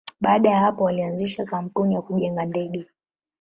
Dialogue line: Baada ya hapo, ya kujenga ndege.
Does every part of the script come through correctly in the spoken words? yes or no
no